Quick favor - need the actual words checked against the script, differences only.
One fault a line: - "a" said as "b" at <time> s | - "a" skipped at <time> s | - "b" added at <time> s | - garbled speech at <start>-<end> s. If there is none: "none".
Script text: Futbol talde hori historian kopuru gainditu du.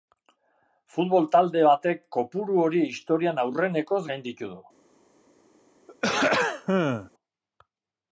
- "batek kopuru" added at 1.7 s
- "kopuru" said as "aurrenekoz" at 3.5 s